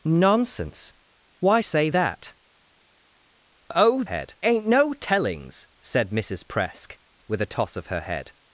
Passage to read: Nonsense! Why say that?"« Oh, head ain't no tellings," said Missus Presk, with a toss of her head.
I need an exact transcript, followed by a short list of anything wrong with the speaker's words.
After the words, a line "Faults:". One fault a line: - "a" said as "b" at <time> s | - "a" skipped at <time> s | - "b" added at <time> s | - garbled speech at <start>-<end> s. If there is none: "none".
Nonsense! Why say that?"« Oh, head ain't no tellings," said Missus Presk, with a toss of her head.
Faults:
none